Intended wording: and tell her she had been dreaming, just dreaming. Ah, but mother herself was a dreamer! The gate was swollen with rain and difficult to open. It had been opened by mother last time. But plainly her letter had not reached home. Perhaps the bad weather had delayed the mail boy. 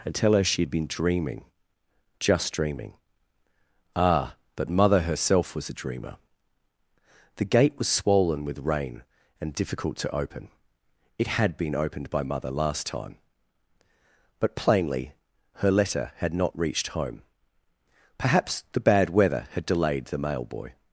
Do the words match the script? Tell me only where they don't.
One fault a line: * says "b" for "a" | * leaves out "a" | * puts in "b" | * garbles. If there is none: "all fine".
all fine